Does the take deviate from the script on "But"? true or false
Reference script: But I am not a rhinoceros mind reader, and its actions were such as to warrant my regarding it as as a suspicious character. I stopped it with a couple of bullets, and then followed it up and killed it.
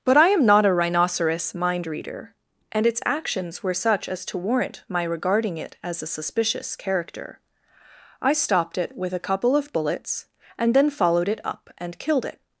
false